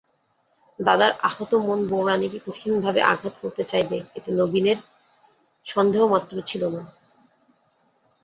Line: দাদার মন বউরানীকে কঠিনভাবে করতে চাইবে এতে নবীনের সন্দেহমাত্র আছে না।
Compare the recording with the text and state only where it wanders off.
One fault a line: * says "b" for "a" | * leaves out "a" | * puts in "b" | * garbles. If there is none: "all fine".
* puts in "আহত"
* puts in "আঘাত"
* says "ছিল" for "আছে"